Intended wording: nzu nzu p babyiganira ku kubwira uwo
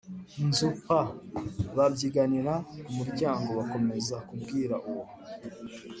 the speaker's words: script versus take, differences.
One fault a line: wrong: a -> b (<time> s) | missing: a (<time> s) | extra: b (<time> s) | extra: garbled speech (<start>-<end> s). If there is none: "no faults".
missing: nzu (0.7 s)
extra: muryango bakomeza (3.0 s)